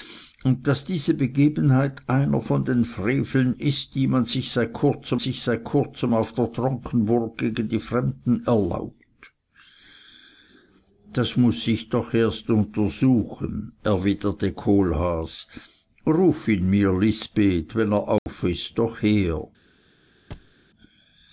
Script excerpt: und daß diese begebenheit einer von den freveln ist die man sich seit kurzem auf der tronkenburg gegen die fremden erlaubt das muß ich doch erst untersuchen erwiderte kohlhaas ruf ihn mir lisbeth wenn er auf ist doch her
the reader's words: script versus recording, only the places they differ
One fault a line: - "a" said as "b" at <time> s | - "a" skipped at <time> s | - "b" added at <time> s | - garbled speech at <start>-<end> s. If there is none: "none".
- "sich seit kurzem" added at 5.2 s